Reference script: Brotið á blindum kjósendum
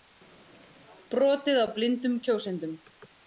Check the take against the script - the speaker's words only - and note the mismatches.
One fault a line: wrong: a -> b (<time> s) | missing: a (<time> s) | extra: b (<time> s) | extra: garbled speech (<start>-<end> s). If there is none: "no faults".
no faults